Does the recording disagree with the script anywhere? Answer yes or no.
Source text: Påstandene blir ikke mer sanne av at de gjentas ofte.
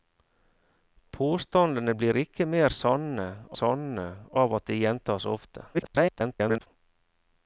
yes